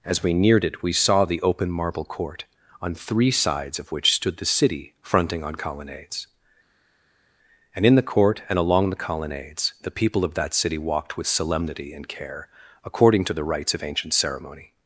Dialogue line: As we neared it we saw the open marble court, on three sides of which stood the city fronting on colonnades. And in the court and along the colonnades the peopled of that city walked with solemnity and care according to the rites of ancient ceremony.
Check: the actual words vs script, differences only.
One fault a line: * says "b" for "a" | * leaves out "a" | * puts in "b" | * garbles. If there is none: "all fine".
* says "people" for "peopled"